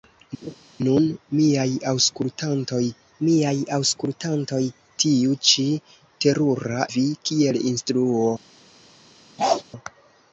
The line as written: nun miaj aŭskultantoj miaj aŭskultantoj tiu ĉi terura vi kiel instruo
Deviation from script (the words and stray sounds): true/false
true